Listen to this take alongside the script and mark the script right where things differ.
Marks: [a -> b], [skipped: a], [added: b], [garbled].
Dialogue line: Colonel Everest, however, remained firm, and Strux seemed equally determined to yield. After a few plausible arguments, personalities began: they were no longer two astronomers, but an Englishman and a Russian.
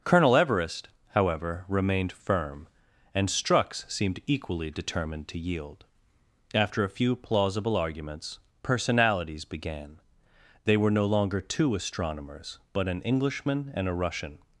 Colonel Everest, however, remained firm, and Strux seemed equally determined to yield. After a few plausible arguments, personalities began: they were no longer two astronomers, but an Englishman and a Russian.